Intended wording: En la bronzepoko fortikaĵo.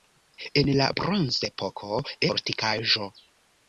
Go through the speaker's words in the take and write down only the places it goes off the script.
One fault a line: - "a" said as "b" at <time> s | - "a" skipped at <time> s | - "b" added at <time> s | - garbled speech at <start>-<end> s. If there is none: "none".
none